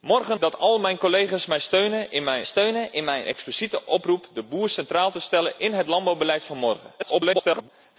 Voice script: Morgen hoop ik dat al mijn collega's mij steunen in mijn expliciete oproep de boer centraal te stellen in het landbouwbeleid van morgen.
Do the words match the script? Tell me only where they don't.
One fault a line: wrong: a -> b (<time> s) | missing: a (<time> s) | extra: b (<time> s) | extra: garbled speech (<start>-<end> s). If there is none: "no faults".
missing: hoop ik (0.4 s)
extra: steunen in mijn (2.4 s)
extra: garbled speech (7.0-7.7 s)